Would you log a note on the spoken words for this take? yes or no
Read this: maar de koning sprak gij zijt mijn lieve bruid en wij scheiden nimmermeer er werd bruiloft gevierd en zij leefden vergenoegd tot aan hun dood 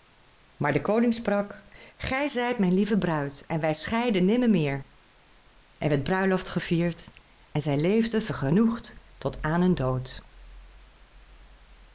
no